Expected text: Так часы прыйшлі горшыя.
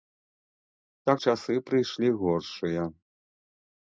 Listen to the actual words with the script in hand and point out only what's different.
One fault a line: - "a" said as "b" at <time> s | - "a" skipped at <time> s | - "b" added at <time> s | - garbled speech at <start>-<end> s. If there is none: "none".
none